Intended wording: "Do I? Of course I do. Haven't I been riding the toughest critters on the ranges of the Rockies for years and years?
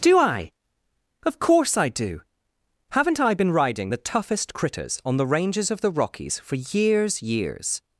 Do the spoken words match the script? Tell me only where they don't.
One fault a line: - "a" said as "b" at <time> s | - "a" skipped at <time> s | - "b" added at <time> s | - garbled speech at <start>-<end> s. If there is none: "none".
- "and" skipped at 7.2 s